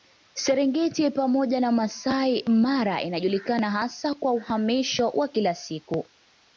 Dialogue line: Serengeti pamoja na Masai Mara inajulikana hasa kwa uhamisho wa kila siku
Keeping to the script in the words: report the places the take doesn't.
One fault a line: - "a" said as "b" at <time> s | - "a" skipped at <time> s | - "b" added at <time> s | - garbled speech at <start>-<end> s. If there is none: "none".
none